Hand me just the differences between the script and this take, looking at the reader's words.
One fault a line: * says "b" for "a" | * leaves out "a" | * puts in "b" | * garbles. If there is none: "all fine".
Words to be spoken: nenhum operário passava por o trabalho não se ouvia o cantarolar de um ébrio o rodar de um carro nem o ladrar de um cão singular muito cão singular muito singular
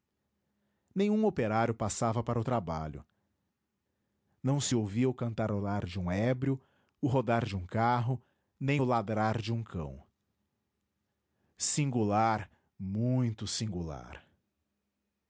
* says "para" for "por"
* leaves out "cão singular muito"